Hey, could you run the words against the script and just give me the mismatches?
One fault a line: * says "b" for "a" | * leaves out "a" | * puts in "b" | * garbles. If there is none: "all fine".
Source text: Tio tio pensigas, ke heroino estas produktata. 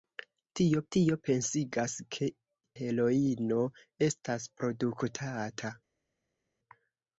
all fine